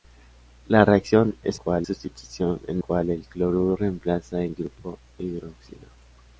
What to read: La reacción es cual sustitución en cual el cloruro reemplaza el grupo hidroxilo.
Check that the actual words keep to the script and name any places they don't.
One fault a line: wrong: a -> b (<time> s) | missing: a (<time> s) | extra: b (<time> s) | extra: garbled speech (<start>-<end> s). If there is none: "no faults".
no faults